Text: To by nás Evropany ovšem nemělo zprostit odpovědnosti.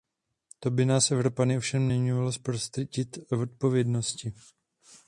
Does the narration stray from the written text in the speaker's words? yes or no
no